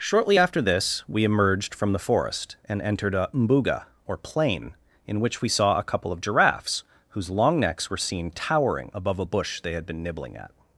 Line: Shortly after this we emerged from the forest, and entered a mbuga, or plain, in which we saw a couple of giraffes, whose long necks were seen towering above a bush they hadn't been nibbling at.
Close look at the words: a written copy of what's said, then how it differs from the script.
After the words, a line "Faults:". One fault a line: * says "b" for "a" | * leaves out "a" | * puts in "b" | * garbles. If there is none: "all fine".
Shortly after this we emerged from the forest, and entered a mbuga, or plain, in which we saw a couple of giraffes, whose long necks were seen towering above a bush they had been nibbling at.
Faults:
* says "had" for "hadn't"